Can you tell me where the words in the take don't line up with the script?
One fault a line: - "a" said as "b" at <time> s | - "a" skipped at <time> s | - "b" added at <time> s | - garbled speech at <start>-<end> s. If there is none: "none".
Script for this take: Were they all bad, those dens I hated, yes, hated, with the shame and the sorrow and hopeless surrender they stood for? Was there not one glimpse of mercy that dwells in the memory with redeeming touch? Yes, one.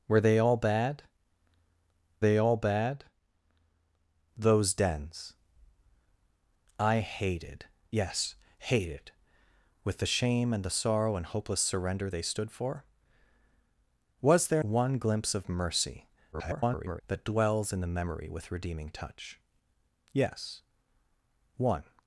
- "they all bad" added at 2.2 s
- "not" skipped at 14.6 s
- garbled speech at 16.3-17.0 s